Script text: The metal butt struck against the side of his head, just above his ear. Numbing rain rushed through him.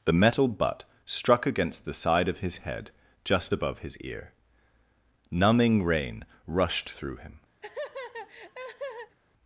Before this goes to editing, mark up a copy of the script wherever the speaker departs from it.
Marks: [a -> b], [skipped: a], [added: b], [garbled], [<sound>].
The metal butt struck against the side of his head, just above his ear. Numbing rain rushed through him. [laugh]